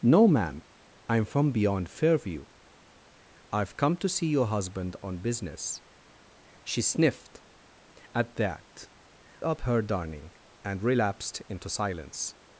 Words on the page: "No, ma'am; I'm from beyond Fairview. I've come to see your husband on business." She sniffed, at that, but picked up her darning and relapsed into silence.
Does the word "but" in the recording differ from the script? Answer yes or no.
yes